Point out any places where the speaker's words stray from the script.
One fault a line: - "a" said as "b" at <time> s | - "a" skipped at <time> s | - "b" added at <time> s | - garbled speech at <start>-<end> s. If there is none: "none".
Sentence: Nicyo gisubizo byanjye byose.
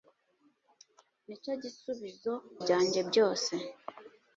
none